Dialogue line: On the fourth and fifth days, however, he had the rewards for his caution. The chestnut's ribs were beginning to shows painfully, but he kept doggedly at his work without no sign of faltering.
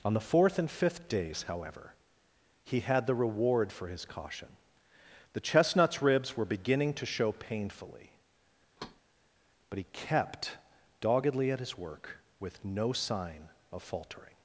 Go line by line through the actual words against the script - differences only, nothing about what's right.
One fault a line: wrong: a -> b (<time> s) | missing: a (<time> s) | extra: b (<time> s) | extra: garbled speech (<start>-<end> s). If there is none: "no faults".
wrong: rewards -> reward (3.1 s)
wrong: shows -> show (7.0 s)
wrong: without -> with (12.4 s)